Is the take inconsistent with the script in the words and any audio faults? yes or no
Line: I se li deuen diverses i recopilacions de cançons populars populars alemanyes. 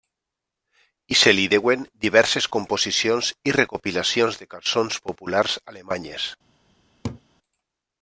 yes